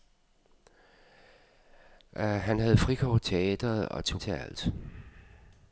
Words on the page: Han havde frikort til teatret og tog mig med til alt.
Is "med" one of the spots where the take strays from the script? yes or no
yes